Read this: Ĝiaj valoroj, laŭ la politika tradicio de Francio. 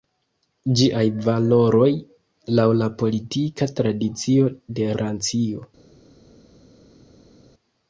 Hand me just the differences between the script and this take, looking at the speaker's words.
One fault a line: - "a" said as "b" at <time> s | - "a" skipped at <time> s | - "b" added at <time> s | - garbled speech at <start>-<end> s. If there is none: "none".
none